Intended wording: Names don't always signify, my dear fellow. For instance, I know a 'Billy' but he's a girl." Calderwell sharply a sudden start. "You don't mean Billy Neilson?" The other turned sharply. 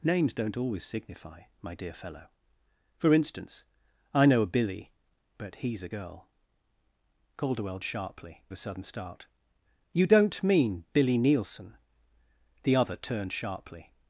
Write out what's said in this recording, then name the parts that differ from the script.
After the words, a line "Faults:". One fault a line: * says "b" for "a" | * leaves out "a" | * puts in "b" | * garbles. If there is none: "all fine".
Names don't always signify, my dear fellow. For instance, I know a 'Billy' but he's a girl." Calderwell sharply a sudden start. "You don't mean Billy Neilson?" The other turned sharply.
Faults:
all fine